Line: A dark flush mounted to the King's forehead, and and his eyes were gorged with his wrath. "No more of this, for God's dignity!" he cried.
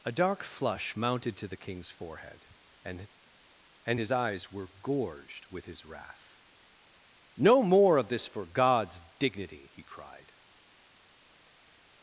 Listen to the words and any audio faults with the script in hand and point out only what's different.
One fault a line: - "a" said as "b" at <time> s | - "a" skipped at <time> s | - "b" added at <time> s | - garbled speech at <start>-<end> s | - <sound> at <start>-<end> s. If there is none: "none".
none